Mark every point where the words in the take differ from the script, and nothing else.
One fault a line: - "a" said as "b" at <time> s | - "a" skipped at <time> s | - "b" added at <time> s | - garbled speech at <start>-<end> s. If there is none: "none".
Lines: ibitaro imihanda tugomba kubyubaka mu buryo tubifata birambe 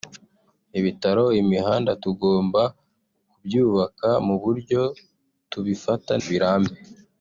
none